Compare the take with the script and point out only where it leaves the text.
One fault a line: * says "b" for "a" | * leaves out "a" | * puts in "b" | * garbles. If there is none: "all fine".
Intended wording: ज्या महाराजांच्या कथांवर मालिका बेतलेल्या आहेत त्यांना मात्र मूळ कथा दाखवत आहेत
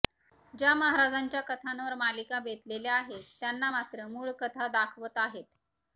all fine